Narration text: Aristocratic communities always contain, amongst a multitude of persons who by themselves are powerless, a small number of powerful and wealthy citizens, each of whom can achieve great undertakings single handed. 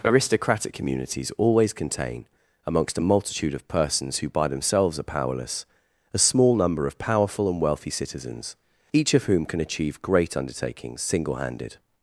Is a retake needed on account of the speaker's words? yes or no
no